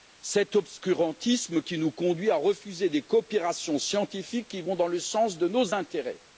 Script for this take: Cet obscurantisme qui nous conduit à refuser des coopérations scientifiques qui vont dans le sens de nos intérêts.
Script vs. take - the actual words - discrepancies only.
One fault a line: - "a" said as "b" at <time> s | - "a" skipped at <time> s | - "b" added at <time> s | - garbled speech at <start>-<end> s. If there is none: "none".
none